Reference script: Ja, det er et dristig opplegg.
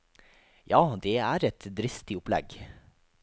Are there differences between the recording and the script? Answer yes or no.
no